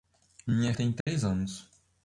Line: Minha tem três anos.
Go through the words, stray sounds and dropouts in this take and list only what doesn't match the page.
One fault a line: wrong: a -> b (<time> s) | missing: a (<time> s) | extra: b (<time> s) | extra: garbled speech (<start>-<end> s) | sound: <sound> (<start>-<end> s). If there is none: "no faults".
sound: dropout (1.0-1.1 s)